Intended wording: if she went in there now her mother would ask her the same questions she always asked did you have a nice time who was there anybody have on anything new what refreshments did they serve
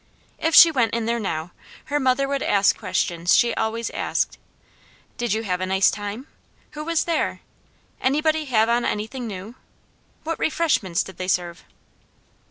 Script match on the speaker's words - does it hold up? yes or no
no